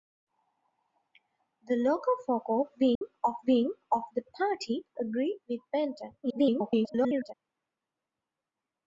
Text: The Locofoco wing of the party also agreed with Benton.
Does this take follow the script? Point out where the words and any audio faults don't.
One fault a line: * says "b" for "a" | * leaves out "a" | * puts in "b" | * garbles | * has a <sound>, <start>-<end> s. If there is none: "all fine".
* has a dropout, 3.0-3.0 s
* puts in "wing of"
* leaves out "also"
* garbles